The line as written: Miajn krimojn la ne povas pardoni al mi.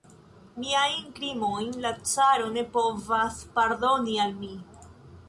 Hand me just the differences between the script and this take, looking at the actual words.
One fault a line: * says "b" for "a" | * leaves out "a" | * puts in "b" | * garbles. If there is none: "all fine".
* puts in "caro"